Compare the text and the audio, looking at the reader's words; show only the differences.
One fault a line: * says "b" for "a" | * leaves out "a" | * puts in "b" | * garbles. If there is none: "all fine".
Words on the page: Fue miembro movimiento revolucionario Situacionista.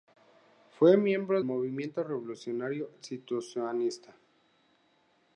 all fine